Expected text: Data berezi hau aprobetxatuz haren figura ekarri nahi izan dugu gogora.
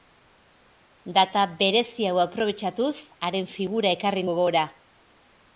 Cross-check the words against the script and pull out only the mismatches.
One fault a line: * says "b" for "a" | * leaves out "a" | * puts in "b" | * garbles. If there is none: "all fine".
* leaves out "nahi izan dugu"